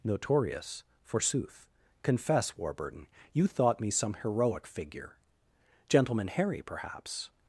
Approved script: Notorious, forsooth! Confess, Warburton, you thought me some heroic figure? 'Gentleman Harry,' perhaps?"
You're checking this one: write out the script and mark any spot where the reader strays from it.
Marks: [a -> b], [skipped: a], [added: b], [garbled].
Notorious, forsooth! Confess, Warburton, you thought me some heroic figure? 'Gentleman Harry,' perhaps?"